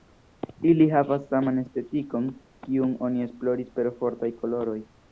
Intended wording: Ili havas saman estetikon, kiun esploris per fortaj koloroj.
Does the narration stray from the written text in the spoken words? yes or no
yes